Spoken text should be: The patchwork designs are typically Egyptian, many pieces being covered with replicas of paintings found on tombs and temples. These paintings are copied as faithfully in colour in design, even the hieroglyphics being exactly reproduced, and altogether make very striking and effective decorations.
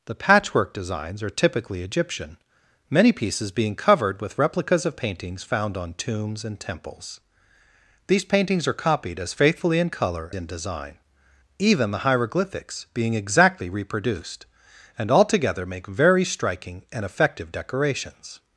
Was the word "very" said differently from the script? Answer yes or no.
no